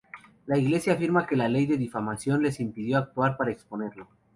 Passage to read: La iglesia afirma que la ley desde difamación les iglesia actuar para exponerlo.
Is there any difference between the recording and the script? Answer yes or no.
yes